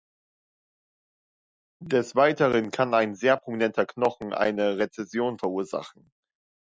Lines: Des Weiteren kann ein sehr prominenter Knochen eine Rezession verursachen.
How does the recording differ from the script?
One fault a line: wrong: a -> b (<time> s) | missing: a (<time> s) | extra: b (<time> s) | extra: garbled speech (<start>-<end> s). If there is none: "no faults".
no faults